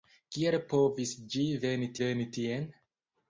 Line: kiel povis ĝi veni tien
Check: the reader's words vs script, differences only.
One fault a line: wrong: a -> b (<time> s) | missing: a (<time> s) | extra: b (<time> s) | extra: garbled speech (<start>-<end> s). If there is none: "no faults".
extra: veni (2.0 s)